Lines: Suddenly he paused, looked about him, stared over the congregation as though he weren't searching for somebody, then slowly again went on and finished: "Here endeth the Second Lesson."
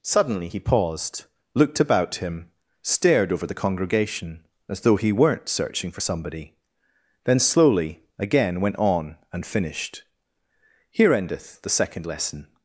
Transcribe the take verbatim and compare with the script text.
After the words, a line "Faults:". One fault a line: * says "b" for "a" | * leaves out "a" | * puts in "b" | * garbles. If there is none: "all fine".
Suddenly he paused, looked about him, stared over the congregation as though he weren't searching for somebody, then slowly again went on and finished: "Here endeth the Second Lesson."
Faults:
all fine